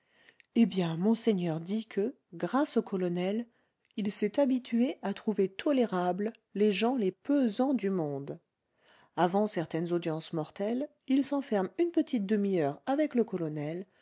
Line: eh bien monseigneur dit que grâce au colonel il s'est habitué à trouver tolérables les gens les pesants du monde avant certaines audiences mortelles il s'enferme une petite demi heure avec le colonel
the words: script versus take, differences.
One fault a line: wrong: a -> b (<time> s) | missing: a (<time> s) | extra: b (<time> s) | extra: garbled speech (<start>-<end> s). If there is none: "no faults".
no faults